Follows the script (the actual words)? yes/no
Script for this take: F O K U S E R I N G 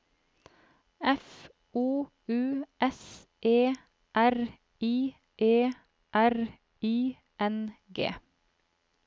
no